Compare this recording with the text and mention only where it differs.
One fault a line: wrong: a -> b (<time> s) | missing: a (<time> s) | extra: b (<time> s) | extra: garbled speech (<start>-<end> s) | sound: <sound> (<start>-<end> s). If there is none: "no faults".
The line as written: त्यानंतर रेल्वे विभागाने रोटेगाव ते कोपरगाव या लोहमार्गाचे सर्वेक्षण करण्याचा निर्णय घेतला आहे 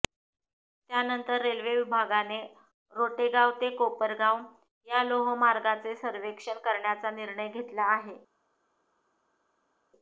no faults